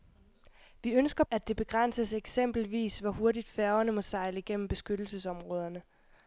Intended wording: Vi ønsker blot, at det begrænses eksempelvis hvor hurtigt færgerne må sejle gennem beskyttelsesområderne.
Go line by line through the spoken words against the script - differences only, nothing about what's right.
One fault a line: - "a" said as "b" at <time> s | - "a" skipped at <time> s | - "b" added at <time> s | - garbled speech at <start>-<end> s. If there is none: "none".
- "blot" skipped at 1.2 s